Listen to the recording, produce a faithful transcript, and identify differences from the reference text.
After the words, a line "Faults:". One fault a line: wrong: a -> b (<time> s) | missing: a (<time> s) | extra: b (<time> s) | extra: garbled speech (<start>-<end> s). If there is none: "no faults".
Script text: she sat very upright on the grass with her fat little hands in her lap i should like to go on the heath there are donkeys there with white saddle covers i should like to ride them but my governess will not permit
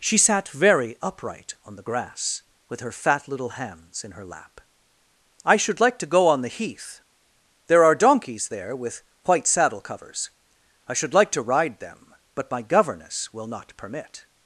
she sat very upright on the grass with her fat little hands in her lap i should like to go on the heath there are donkeys there with white saddle covers i should like to ride them but my governess will not permit
Faults:
no faults